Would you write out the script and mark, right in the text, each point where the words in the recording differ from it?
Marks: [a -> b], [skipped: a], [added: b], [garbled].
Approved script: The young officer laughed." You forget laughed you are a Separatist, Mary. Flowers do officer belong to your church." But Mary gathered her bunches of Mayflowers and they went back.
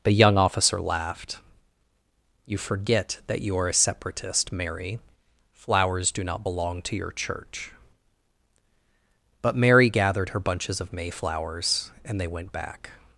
The young officer laughed." You forget [laughed -> that] you are a Separatist, Mary. Flowers do [officer -> not] belong to your church." But Mary gathered her bunches of Mayflowers and they went back.